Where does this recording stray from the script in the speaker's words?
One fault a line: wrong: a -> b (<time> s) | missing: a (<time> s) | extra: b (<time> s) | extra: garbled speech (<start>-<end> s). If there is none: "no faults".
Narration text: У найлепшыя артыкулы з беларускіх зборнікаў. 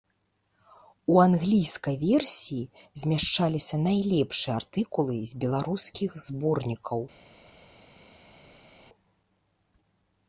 extra: англійскай версіі змяшчаліся (1.2 s)